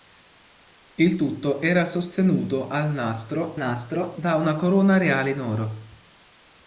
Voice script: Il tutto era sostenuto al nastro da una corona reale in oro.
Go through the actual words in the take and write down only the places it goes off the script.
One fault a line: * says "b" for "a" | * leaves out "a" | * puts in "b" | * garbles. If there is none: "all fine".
* puts in "nastro"